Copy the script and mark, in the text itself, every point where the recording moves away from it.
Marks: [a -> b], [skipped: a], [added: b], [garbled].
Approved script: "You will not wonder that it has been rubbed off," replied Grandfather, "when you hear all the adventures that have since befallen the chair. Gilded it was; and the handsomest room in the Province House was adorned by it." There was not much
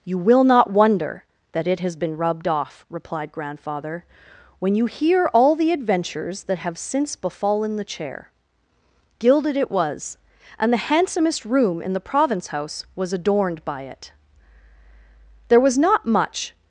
"You will not wonder that it has been rubbed off," replied Grandfather, "when you hear all the adventures that have since befallen the chair. Gilded it was; and the handsomest room in the Province House was adorned by it." There was not much